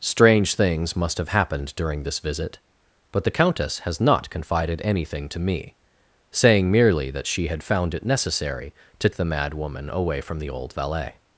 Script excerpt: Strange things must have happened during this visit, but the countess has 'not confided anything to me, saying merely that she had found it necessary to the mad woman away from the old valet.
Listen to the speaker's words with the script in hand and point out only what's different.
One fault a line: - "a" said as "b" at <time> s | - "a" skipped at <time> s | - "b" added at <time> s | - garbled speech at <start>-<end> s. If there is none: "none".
none